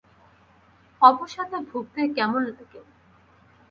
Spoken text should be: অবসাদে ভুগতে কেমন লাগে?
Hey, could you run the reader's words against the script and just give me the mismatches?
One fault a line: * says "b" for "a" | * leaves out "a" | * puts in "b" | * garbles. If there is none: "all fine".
all fine